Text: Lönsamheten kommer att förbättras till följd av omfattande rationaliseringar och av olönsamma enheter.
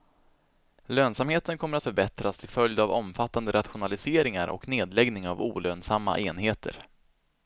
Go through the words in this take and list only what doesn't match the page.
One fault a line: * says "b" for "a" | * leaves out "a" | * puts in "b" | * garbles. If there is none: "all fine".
* puts in "nedläggning"